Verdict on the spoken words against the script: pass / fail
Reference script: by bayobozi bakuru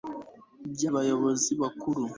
pass